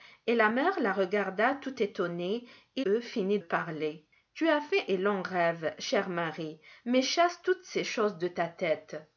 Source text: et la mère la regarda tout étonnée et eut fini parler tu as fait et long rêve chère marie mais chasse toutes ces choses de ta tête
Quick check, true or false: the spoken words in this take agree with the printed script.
true